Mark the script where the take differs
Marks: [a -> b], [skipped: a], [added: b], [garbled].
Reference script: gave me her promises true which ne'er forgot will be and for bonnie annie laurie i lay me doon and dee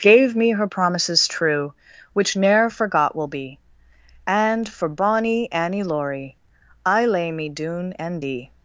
gave me her promises true which ne'er forgot will be and for bonnie annie laurie i lay me doon and dee